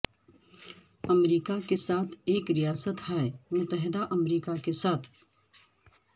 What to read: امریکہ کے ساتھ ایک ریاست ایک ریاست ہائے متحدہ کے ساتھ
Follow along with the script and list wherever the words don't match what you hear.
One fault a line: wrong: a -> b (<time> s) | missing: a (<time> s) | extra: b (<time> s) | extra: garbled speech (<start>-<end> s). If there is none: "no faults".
missing: ایک ریاست (3.0 s)
extra: امریکہ (4.1 s)